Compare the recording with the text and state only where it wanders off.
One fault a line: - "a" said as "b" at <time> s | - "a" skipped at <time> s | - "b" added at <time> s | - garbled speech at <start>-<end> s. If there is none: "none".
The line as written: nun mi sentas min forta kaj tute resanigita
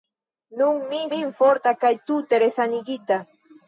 - "sentas" skipped at 1.0 s